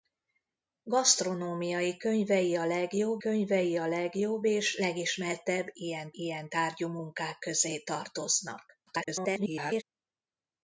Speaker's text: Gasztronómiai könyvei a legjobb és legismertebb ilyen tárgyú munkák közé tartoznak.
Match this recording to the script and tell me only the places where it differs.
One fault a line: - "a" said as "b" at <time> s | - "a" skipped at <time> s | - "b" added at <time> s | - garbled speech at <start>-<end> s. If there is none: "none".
- "könyvei a legjobb" added at 3.2 s
- "ilyen" added at 6.1 s
- garbled speech at 8.9-9.8 s